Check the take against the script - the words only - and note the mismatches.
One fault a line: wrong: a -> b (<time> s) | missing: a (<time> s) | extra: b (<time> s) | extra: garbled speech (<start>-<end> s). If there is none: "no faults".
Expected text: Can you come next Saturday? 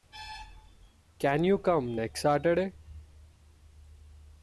no faults